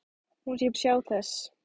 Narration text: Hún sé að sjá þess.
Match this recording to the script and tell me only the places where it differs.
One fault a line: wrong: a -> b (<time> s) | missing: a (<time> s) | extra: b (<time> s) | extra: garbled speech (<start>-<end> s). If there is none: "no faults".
no faults